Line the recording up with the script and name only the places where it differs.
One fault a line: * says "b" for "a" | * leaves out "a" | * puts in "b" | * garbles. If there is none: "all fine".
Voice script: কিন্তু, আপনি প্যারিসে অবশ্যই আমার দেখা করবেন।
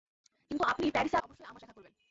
all fine